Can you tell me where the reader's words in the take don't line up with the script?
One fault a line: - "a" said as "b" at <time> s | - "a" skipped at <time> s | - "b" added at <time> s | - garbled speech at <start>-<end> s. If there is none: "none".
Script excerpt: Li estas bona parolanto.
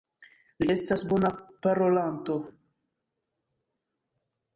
none